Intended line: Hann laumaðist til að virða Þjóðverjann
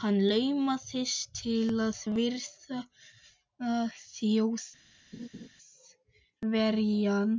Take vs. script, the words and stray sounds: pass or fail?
fail